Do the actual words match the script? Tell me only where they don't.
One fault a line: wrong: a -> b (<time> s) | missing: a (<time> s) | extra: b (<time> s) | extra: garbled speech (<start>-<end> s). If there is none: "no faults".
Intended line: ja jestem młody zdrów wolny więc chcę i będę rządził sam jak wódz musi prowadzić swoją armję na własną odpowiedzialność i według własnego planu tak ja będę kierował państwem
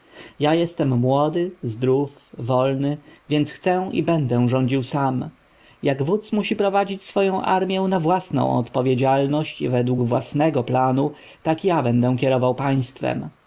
no faults